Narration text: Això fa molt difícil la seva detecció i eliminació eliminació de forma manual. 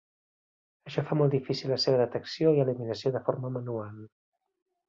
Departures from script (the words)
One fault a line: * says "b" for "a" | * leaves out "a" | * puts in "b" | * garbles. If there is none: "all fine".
* leaves out "eliminació"